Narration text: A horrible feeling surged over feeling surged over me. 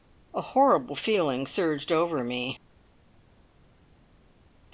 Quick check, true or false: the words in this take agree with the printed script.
false